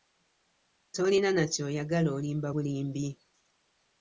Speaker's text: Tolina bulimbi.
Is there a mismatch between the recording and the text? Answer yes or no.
yes